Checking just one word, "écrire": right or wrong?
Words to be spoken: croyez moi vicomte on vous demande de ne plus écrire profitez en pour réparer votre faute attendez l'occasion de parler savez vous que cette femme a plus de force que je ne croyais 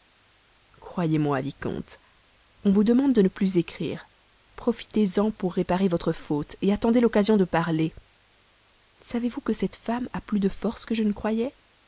right